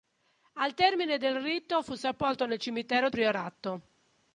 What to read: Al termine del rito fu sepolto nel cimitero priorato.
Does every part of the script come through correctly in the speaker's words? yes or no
yes